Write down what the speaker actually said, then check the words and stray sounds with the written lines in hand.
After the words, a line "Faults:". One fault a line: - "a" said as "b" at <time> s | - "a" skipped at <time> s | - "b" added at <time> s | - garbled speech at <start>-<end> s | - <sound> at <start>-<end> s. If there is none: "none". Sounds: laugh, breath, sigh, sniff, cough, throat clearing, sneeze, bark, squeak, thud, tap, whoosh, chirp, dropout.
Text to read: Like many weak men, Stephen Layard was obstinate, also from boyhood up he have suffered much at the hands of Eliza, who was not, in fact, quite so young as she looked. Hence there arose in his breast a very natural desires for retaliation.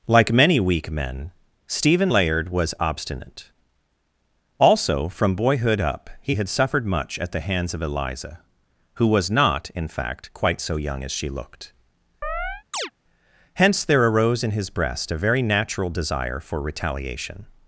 Like many weak men, Stephen Layard was obstinate, also from boyhood up he had suffered much at the hands of Eliza, who was not, in fact, quite so young as she looked. Hence there arose in his breast a very natural desire for retaliation.
Faults:
- "have" said as "had" at 6.3 s
- chirp at 12.2-12.9 s
- "desires" said as "desire" at 15.9 s